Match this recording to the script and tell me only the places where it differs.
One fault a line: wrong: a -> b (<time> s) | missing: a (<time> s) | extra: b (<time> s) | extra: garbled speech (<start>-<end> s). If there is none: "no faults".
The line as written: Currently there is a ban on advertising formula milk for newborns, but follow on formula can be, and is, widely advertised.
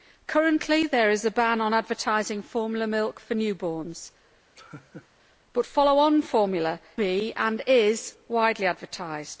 missing: can (6.8 s)